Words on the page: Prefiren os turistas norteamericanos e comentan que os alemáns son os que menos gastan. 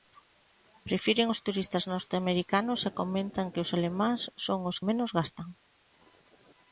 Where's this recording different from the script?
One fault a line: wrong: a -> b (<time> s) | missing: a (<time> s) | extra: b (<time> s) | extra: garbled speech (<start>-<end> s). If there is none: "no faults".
missing: que (4.8 s)